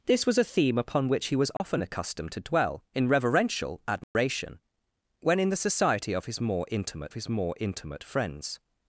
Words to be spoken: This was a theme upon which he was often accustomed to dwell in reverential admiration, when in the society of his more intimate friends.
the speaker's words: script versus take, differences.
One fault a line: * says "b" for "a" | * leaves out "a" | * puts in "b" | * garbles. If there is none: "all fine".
* puts in "his more intimate"